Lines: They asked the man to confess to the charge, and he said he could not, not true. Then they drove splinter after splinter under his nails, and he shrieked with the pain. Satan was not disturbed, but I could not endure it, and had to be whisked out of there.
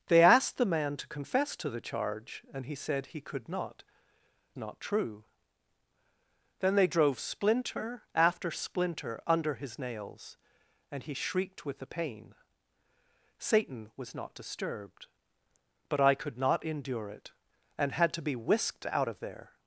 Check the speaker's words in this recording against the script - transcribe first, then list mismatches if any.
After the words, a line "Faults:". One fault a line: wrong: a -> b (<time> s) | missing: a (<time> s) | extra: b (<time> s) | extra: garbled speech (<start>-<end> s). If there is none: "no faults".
They asked the man to confess to the charge, and he said he could not, not true. Then they drove splinter after splinter under his nails, and he shrieked with the pain. Satan was not disturbed, but I could not endure it, and had to be whisked out of there.
Faults:
no faults